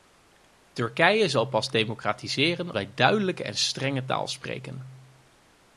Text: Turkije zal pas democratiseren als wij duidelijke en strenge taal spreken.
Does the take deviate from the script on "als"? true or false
true